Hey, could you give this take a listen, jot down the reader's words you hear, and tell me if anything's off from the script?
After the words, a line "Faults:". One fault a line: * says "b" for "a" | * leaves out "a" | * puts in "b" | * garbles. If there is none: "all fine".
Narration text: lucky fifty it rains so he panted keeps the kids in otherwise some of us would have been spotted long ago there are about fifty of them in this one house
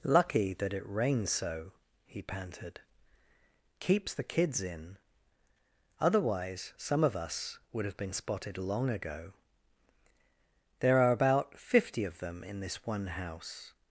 lucky that it rains so he panted keeps the kids in otherwise some of us would have been spotted long ago there are about fifty of them in this one house
Faults:
* says "that" for "fifty"